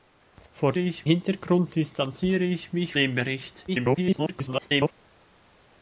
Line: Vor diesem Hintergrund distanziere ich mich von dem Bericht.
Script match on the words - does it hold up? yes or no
no